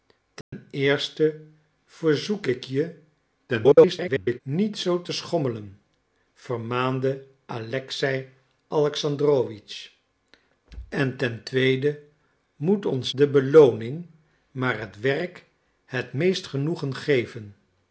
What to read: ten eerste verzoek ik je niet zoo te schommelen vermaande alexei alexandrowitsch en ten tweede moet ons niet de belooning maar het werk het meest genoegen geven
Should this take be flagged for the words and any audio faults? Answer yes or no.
yes